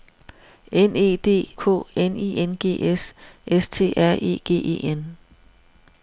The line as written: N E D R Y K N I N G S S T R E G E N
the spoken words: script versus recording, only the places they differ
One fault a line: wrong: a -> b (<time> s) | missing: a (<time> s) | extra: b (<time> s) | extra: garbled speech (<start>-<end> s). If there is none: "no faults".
missing: R Y (1.5 s)